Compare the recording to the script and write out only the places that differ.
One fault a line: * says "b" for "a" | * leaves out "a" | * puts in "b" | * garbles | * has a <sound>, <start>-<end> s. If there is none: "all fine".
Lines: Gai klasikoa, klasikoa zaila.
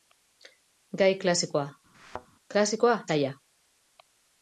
* has a thud, 1.9-2.3 s